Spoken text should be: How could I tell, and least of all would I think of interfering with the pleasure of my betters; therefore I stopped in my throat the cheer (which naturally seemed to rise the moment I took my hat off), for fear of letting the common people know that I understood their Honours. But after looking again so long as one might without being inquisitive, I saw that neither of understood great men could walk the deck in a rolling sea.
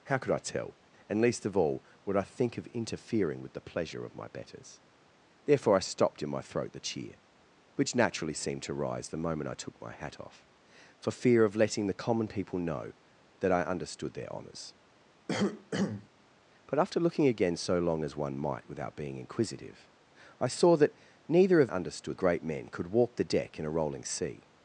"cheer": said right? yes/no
yes